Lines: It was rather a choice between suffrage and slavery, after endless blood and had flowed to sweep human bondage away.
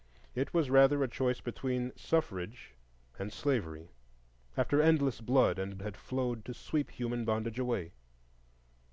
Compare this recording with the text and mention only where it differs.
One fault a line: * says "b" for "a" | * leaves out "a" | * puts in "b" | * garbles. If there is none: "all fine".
all fine